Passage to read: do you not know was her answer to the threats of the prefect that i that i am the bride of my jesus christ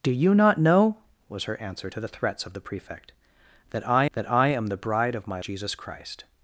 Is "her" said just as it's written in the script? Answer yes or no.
yes